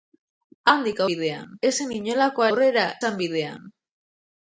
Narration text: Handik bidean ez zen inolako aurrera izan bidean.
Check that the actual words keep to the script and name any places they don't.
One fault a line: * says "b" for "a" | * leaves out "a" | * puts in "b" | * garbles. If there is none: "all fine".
all fine